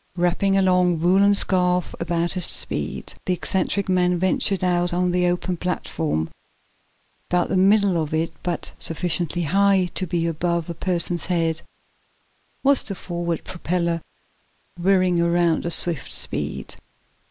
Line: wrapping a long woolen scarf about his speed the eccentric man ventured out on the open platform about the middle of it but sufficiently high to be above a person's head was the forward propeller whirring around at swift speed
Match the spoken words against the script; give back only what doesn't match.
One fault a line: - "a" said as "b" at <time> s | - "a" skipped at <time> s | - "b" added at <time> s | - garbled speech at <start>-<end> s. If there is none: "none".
none